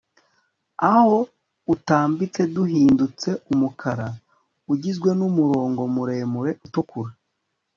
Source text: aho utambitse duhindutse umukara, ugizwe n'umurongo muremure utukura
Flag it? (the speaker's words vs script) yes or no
no